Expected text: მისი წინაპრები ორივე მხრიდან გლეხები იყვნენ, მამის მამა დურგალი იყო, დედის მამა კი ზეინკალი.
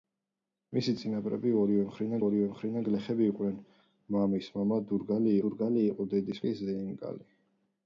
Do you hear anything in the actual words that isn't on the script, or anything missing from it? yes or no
yes